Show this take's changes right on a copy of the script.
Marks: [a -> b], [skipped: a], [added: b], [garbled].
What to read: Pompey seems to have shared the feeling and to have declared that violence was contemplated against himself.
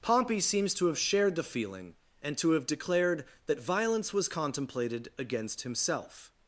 Pompey seems to have shared the feeling and to have declared that violence was contemplated against himself.